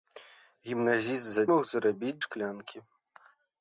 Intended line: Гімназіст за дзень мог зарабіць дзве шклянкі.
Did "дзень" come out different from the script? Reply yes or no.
yes